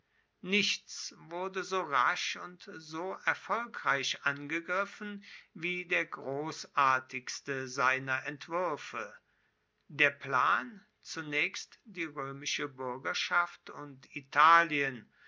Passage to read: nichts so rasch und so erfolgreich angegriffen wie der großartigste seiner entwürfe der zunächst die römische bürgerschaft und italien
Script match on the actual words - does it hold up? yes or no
no